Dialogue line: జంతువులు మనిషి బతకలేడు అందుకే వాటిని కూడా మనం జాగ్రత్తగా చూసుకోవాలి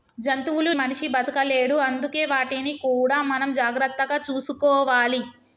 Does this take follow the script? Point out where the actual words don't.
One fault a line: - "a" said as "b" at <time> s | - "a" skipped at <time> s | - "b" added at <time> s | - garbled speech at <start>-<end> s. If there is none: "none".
none